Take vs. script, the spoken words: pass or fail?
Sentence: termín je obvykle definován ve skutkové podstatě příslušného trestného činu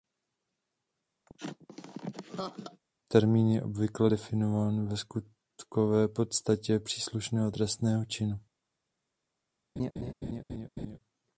pass